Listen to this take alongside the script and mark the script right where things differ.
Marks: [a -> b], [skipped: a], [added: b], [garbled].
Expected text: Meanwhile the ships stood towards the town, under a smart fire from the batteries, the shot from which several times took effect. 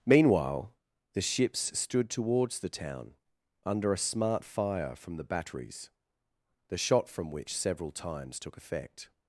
Meanwhile the ships stood towards the town, under a smart fire from the batteries, the shot from which several times took effect.